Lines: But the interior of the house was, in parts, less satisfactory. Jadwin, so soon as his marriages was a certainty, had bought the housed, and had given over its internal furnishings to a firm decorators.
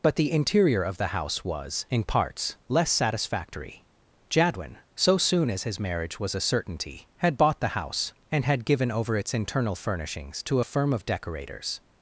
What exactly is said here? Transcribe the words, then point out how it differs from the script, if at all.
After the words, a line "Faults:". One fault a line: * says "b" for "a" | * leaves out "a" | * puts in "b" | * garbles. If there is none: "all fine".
But the interior of the house was, in parts, less satisfactory. Jadwin, so soon as his marriage was a certainty, had bought the house, and had given over its internal furnishings to a firm of decorators.
Faults:
* says "marriage" for "marriages"
* says "house" for "housed"
* puts in "of"